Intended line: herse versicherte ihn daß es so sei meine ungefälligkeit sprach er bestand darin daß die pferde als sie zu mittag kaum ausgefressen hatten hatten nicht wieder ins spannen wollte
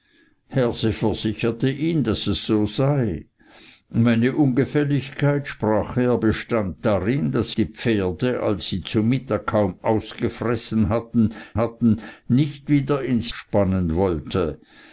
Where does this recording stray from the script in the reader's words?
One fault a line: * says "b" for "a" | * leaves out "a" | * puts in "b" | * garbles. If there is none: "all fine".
all fine